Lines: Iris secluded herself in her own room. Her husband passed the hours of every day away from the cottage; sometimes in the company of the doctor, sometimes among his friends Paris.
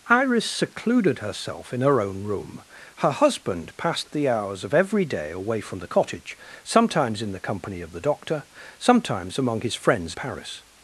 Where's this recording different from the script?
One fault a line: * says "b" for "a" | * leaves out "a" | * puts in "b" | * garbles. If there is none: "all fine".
all fine